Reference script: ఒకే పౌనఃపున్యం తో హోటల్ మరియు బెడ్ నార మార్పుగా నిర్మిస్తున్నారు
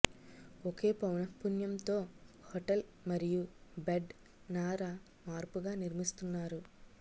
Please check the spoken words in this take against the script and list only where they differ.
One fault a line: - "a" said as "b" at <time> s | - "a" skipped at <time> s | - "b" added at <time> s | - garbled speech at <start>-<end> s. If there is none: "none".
none